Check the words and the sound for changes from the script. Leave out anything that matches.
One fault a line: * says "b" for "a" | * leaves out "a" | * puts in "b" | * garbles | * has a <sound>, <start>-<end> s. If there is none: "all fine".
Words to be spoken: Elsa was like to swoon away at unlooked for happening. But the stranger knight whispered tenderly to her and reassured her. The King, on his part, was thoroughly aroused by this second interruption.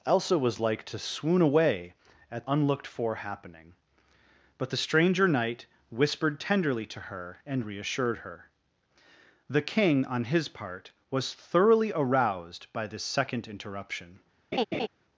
* has a laugh, 14.5-14.9 s